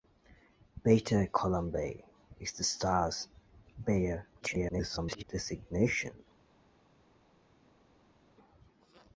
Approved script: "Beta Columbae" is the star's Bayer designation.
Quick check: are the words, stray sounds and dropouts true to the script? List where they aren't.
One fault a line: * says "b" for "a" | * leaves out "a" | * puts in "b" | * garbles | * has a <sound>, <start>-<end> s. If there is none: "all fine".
* garbles